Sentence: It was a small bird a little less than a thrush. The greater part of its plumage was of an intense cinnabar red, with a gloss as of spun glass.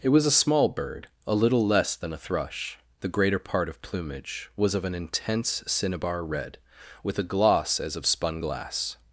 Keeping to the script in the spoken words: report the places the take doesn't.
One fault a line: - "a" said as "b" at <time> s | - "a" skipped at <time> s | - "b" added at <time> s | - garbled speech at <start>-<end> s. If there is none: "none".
- "its" skipped at 3.8 s